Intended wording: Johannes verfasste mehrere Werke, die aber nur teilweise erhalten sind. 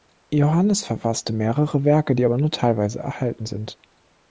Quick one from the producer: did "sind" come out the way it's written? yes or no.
yes